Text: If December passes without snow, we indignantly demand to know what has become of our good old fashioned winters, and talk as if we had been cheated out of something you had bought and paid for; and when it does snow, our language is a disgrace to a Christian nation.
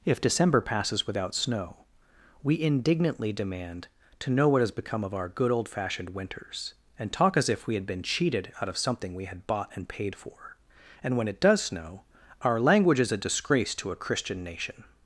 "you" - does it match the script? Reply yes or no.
no